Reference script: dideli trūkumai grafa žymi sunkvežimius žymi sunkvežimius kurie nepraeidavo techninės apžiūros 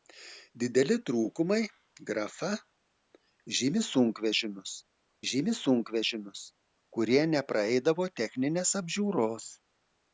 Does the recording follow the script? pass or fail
pass